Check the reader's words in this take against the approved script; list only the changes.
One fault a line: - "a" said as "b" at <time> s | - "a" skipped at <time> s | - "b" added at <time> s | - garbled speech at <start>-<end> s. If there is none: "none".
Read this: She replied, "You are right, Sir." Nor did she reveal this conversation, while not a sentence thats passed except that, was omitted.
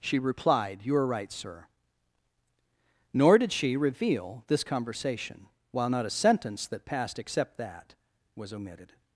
- "thats" said as "that" at 6.7 s